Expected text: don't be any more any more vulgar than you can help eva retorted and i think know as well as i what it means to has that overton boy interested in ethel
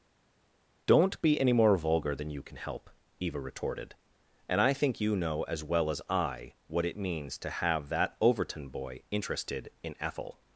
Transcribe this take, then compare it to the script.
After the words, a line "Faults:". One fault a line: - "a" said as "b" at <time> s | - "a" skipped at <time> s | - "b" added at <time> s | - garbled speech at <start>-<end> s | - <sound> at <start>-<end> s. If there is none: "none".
don't be any more vulgar than you can help eva retorted and i think you know as well as i what it means to have that overton boy interested in ethel
Faults:
- "any more" skipped at 1.8 s
- "you" added at 5.0 s
- "has" said as "have" at 7.5 s